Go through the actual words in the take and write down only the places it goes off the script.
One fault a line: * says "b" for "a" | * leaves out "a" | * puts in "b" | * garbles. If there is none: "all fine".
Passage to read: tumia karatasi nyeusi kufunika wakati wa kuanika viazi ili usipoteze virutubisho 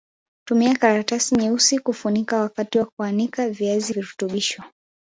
* leaves out "ili usipoteze"